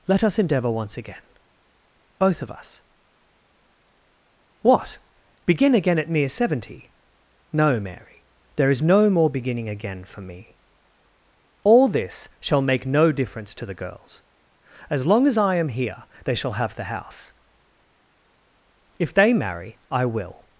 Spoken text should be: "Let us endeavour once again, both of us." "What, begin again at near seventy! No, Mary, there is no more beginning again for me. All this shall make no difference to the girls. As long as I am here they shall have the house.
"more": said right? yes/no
yes